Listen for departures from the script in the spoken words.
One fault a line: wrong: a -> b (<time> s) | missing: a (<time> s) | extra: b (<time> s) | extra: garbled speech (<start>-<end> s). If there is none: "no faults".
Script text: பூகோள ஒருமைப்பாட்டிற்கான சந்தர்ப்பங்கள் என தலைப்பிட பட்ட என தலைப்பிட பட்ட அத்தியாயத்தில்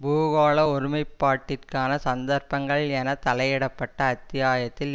missing: என தலைப்பிட பட்ட (4.0 s)